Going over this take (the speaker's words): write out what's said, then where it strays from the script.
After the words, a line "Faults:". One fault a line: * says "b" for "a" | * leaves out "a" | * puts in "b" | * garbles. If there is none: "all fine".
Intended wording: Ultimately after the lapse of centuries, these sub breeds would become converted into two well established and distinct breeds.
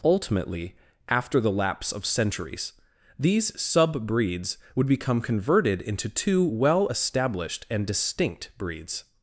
Ultimately after the lapse of centuries, these sub breeds would become converted into two well established and distinct breeds.
Faults:
all fine